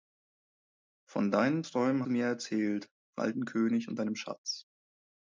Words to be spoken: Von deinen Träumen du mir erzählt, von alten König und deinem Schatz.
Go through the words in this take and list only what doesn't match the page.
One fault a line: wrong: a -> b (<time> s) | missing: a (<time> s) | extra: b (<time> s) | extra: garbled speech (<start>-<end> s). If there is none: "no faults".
no faults